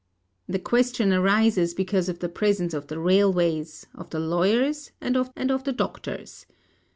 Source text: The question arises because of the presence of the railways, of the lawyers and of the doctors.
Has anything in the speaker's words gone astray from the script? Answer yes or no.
yes